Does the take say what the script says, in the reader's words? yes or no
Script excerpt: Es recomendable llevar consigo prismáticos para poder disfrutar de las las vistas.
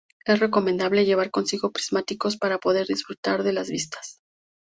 no